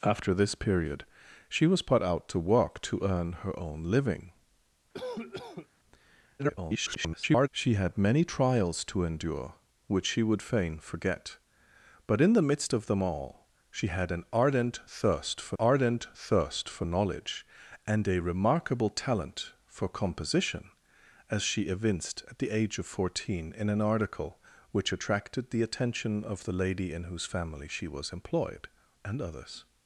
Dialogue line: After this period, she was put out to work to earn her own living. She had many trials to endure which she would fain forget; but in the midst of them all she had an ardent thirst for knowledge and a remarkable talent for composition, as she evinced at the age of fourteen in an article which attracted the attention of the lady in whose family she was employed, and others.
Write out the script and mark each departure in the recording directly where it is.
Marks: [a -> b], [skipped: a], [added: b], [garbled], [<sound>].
After this period, she was put out to work to earn her own living. [cough] [garbled] She had many trials to endure which she would fain forget; but in the midst of them all she had an ardent thirst for [added: ardent thirst for] knowledge and a remarkable talent for composition, as she evinced at the age of fourteen in an article which attracted the attention of the lady in whose family she was employed, and others.